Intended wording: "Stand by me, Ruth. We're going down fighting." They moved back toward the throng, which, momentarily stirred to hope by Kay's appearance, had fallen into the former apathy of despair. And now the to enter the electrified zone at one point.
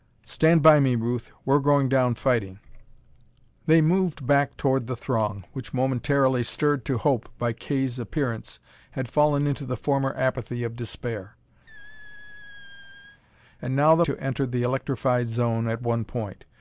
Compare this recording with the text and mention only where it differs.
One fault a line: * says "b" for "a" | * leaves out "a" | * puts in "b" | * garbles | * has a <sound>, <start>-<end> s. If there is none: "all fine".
* has a squeak, 11.7-13.2 s